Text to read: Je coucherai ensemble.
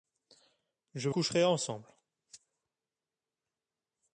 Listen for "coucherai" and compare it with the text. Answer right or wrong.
right